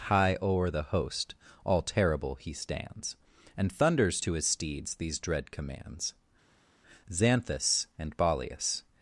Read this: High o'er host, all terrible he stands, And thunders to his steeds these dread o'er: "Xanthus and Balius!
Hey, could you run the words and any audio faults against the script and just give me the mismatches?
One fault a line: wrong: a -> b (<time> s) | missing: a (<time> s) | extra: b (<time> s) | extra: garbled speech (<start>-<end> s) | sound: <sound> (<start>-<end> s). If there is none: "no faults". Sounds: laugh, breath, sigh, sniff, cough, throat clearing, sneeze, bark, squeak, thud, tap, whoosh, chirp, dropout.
extra: the (0.7 s)
wrong: o'er -> commands (5.5 s)